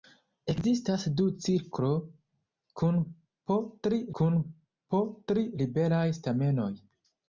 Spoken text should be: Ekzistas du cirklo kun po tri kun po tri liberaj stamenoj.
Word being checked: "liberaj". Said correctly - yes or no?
yes